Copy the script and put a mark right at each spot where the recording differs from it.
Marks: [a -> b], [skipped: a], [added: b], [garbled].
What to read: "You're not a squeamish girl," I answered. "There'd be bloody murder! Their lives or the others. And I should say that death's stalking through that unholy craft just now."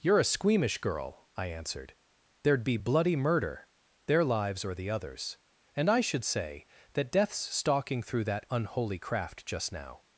"You're [skipped: not] a squeamish girl," I answered. "There'd be bloody murder! Their lives or the others. And I should say that death's stalking through that unholy craft just now."